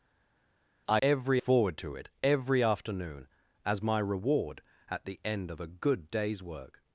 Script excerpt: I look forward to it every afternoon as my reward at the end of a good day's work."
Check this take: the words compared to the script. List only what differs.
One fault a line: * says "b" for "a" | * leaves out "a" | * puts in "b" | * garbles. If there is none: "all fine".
* says "every" for "look"